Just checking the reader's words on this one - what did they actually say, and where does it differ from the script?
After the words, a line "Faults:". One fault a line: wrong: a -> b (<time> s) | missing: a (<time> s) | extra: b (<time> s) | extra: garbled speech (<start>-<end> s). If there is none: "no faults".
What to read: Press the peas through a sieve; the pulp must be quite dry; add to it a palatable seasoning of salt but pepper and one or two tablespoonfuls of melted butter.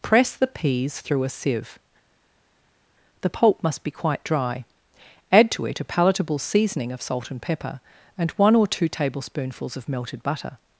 Press the peas through a sieve; the pulp must be quite dry; add to it a palatable seasoning of salt and pepper and one or two tablespoonfuls of melted butter.
Faults:
wrong: but -> and (7.3 s)